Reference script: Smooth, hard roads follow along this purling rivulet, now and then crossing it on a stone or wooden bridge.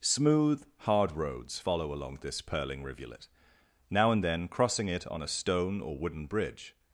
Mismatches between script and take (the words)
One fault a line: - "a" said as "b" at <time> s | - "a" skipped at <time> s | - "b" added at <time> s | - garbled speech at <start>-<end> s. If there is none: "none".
none